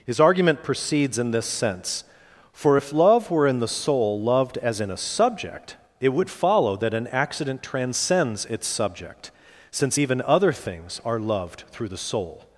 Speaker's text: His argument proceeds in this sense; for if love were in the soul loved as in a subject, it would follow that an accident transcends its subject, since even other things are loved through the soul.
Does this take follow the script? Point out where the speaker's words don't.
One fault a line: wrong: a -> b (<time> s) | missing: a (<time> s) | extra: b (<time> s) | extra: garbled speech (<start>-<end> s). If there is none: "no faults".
no faults